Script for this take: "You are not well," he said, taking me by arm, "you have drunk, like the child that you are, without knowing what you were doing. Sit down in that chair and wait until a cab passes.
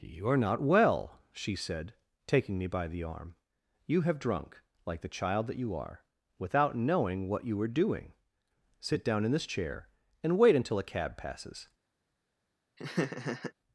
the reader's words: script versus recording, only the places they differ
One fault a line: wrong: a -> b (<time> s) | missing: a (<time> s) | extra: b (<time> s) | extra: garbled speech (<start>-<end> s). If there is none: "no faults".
wrong: he -> she (1.3 s)
extra: the (2.9 s)
wrong: that -> this (9.3 s)